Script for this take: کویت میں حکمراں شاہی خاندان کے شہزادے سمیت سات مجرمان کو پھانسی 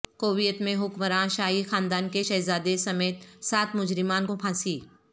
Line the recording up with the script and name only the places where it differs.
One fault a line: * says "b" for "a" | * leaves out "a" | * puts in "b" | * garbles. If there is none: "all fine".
all fine